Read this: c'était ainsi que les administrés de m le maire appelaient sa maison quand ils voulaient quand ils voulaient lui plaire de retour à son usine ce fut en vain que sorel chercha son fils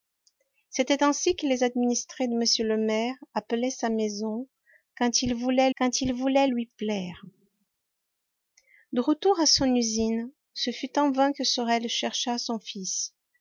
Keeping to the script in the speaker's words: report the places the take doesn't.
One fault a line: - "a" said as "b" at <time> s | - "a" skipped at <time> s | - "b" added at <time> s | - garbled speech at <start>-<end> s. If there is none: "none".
none